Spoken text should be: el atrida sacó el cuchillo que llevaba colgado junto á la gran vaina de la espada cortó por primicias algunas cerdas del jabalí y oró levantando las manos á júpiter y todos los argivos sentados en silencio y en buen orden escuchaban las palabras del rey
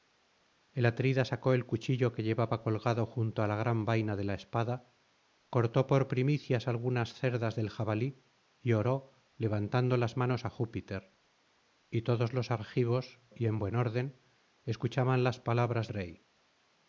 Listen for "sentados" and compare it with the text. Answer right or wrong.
wrong